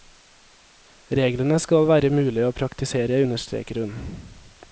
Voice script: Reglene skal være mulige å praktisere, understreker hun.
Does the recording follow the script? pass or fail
pass